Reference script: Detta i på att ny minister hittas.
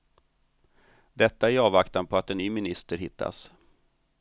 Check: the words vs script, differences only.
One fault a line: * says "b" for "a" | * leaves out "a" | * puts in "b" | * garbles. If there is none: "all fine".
* puts in "avvaktan"
* puts in "en"